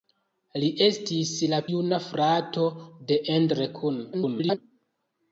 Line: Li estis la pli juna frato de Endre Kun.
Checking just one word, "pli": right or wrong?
wrong